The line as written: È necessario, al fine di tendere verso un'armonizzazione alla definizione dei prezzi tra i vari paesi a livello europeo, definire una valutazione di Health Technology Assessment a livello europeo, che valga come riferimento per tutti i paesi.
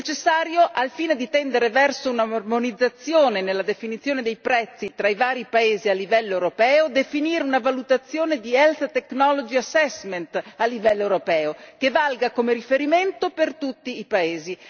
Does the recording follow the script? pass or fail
fail